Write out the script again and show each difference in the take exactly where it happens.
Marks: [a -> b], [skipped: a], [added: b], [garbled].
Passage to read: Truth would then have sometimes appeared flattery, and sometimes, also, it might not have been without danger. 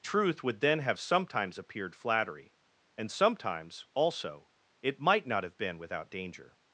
Truth would then have sometimes appeared flattery, and sometimes, also, it might not have been without danger.